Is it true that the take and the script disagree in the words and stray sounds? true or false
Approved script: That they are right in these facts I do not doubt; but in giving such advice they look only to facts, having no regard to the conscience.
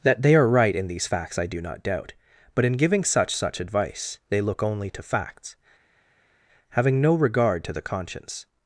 true